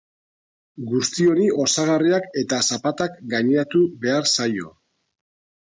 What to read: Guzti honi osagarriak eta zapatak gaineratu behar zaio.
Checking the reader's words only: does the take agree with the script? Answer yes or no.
yes